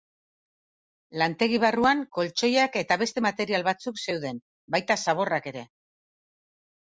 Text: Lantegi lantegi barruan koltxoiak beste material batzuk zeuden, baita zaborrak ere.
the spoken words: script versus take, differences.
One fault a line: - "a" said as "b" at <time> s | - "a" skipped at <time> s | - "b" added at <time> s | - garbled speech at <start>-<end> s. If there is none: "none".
- "lantegi" skipped at 1.6 s
- "eta" added at 2.8 s